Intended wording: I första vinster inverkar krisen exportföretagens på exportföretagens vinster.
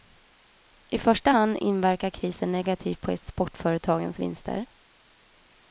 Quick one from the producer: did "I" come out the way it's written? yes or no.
yes